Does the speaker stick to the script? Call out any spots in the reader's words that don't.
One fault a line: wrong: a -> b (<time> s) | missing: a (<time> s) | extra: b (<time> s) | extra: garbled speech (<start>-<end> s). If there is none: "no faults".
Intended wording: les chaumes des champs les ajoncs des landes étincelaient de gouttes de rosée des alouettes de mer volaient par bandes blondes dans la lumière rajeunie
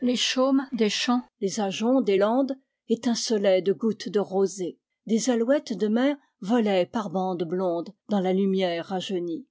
no faults